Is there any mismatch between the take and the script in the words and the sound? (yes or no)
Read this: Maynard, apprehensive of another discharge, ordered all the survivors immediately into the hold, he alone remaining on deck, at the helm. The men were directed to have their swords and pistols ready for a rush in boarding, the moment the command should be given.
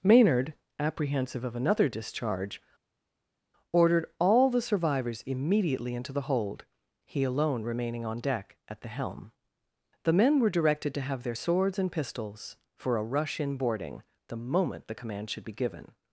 yes